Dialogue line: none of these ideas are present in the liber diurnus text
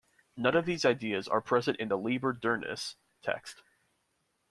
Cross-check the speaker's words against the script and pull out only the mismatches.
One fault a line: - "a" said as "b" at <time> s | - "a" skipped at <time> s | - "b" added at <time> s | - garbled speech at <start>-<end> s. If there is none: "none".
none